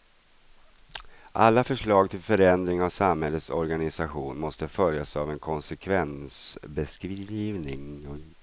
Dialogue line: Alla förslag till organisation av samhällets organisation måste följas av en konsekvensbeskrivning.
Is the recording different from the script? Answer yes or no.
yes